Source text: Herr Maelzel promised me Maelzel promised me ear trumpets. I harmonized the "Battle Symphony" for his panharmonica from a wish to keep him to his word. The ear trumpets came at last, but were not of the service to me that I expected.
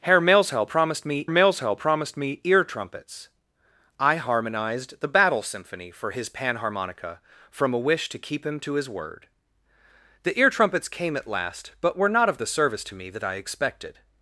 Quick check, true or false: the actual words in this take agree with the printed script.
true